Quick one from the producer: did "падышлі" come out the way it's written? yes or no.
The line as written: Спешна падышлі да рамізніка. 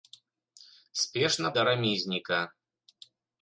no